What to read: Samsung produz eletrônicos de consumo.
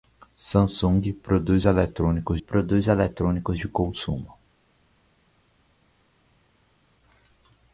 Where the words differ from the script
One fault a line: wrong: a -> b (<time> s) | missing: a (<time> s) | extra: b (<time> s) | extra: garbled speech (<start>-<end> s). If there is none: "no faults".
extra: produz eletrônicos (2.4 s)